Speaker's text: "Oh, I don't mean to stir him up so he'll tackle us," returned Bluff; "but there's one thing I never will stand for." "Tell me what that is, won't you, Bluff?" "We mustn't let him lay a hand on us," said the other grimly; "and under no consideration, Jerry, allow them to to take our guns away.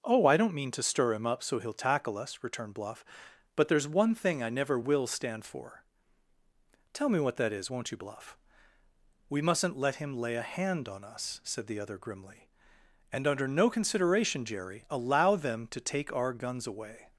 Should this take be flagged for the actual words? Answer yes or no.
yes